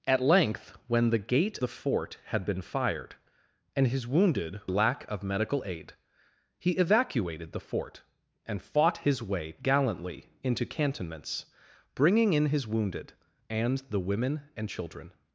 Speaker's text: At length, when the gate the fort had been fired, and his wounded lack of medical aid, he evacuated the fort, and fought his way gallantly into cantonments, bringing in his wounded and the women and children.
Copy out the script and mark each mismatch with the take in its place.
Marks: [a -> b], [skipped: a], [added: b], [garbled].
At length, when the gate the fort had been fired, and his wounded lack of medical aid, he evacuated the fort, and fought his way gallantly into cantonments, bringing in his wounded and the women and children.